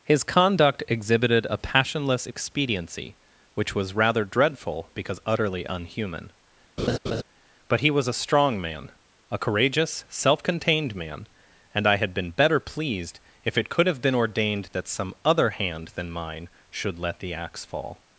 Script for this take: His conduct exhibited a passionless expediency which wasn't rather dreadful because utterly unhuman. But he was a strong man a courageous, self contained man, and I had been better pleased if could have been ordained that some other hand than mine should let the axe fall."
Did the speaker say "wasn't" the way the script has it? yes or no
no